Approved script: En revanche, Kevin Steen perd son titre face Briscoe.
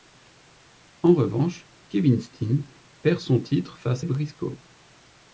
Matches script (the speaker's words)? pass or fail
pass